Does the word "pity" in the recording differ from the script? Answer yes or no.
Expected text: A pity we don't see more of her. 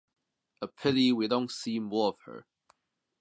no